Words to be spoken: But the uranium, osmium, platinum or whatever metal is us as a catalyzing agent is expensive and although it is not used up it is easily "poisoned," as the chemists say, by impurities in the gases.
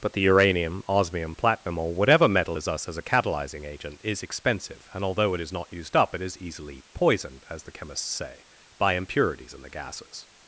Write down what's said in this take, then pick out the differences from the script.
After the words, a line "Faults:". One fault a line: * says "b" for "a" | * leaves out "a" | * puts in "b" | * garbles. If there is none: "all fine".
But the uranium, osmium, platinum or whatever metal is us as a catalyzing agent is expensive and although it is not used up it is easily "poisoned," as the chemists say, by impurities in the gases.
Faults:
all fine